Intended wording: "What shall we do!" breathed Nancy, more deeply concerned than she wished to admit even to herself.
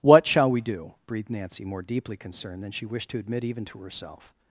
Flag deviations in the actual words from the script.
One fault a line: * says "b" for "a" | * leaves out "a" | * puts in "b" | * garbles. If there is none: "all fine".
all fine